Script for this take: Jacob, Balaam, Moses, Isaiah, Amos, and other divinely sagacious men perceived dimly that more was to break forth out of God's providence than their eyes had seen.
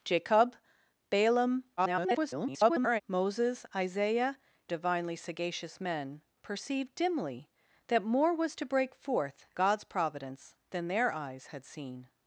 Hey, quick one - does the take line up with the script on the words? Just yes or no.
no